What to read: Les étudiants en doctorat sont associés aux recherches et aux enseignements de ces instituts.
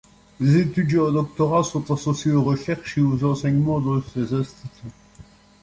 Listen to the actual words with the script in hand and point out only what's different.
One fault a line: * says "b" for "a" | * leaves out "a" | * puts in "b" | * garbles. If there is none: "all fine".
all fine